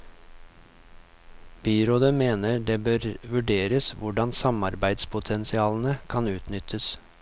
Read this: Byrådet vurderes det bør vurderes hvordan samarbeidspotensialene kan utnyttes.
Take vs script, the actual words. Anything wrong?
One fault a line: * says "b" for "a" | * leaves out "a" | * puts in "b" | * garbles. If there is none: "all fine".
* says "mener" for "vurderes"